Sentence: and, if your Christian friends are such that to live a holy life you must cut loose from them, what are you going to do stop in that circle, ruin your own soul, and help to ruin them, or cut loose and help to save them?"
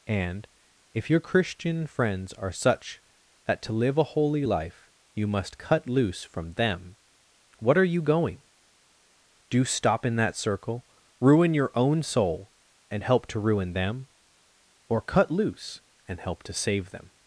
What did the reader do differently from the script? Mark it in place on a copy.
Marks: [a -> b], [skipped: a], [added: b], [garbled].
and, if your Christian friends are such that to live a holy life you must cut loose from them, what are you going [skipped: to] do stop in that circle, ruin your own soul, and help to ruin them, or cut loose and help to save them?"